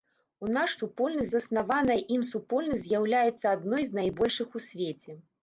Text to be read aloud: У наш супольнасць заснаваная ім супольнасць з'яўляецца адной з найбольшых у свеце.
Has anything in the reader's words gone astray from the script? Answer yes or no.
no